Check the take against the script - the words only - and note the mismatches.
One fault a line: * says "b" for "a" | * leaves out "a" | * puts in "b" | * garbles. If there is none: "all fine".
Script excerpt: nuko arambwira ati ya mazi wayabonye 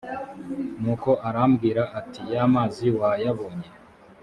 all fine